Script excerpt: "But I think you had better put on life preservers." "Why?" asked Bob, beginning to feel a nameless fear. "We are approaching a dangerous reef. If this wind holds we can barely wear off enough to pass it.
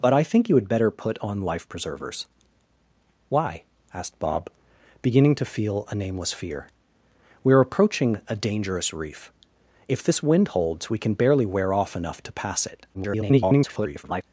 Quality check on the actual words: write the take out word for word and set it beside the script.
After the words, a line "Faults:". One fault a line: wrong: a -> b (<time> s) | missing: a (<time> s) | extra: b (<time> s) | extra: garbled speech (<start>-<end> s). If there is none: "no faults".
"But I think you had better put on life preservers." "Why?" asked Bob, beginning to feel a nameless fear. "We are approaching a dangerous reef. If this wind holds we can barely wear off enough to pass it. [garbled]
Faults:
extra: garbled speech (12.9-14.2 s)